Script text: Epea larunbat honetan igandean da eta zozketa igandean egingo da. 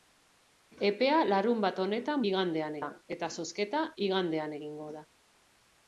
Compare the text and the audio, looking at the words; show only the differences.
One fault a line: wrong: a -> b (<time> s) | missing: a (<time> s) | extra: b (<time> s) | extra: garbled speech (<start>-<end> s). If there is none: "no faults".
no faults